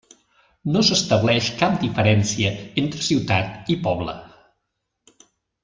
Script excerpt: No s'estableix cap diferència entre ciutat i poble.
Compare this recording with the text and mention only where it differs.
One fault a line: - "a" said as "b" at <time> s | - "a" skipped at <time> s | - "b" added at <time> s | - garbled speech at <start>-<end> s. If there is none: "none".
none